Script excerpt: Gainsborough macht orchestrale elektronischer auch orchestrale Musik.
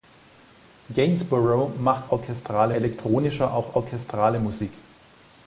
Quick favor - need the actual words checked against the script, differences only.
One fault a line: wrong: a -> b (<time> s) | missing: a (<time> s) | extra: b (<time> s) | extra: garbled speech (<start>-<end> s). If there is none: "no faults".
no faults